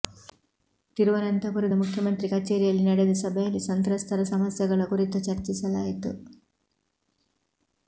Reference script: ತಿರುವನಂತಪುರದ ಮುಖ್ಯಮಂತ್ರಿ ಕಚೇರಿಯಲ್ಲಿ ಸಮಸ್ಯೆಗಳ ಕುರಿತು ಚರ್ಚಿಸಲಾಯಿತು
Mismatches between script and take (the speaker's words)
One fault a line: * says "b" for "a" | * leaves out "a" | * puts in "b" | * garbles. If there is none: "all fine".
* puts in "ನಡೆದ ಸಭೆಯಲ್ಲಿ ಸಂತ್ರಸ್ತರ"